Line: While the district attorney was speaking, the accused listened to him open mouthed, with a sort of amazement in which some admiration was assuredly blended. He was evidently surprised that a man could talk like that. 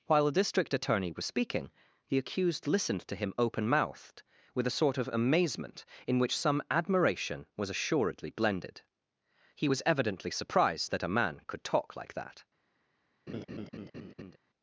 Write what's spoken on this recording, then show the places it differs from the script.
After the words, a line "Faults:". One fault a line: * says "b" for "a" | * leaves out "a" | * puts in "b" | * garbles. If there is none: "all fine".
While the district attorney was speaking, the accused listened to him open mouthed, with a sort of amazement in which some admiration was assuredly blended. He was evidently surprised that a man could talk like that.
Faults:
all fine